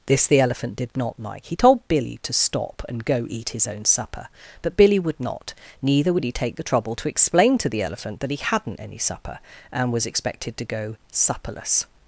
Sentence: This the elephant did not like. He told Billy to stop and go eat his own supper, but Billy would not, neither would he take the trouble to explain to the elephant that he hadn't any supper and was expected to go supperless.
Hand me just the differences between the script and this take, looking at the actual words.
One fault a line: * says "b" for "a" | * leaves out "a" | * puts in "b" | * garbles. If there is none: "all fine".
all fine